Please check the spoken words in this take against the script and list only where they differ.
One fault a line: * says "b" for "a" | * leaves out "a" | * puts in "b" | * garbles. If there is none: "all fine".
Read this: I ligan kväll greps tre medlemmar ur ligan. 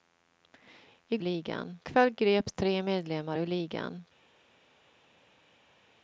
all fine